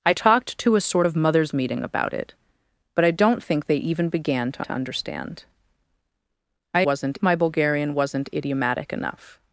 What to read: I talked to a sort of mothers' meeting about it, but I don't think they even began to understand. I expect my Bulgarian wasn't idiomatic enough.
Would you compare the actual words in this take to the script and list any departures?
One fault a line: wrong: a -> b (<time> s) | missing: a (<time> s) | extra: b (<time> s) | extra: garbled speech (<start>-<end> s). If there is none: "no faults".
extra: to (4.6 s)
wrong: expect -> wasn't (6.8 s)